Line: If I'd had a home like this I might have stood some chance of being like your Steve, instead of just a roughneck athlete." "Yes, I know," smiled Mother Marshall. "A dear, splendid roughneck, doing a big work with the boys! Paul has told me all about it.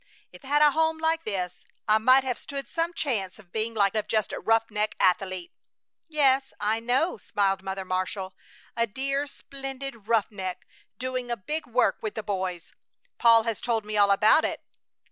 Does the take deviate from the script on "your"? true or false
true